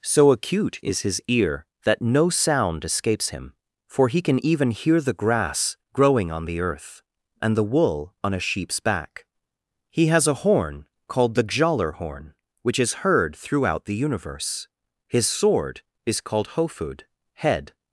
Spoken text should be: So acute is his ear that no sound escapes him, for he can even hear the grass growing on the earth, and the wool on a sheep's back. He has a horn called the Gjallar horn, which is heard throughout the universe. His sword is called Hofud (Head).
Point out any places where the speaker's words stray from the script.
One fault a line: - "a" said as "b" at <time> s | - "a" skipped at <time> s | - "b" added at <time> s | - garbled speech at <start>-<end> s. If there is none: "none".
none